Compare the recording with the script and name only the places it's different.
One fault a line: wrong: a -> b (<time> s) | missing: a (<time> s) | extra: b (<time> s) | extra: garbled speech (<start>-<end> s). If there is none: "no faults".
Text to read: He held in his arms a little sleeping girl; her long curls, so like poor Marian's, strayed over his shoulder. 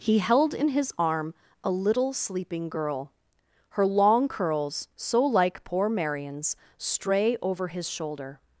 wrong: arms -> arm (1.0 s)
wrong: strayed -> stray (6.8 s)